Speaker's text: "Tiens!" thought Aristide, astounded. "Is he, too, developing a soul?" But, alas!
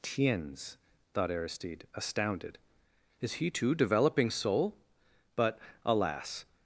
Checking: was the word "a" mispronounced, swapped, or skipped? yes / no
yes